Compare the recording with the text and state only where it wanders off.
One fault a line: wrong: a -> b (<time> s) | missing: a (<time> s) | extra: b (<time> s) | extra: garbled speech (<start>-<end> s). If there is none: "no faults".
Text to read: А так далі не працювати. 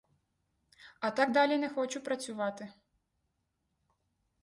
extra: хочу (1.7 s)